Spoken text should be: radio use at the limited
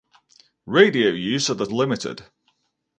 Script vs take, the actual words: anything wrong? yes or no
no